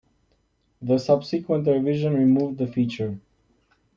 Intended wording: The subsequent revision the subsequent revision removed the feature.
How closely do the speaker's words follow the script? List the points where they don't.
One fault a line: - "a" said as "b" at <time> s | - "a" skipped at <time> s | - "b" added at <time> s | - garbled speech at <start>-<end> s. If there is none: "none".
- "the subsequent revision" skipped at 2.1 s